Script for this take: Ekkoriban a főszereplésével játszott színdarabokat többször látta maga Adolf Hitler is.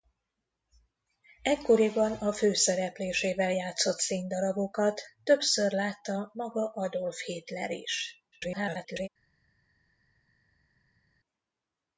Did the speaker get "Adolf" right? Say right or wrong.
right